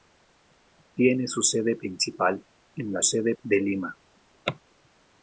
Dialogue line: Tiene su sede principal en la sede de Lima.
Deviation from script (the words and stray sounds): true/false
false